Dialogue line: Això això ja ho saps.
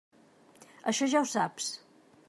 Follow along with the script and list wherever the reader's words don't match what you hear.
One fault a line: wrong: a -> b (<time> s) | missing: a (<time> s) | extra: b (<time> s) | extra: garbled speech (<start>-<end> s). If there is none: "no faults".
missing: això (1.1 s)